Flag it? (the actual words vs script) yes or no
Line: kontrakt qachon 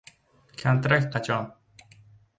no